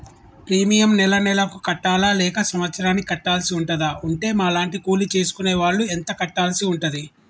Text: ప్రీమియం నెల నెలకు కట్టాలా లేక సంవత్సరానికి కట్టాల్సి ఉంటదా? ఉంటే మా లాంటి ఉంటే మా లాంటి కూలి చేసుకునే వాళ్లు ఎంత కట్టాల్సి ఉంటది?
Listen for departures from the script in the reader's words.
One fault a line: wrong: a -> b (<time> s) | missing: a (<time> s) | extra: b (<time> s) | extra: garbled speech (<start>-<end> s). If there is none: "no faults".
missing: ఉంటే మా లాంటి (4.8 s)